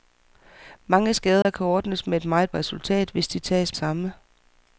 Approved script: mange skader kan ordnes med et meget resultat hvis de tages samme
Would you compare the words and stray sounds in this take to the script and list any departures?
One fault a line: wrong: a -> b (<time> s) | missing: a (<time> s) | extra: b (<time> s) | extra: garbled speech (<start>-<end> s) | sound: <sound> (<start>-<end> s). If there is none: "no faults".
sound: dropout (1.4-1.5 s)